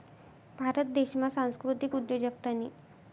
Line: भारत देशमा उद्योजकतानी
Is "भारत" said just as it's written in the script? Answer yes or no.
yes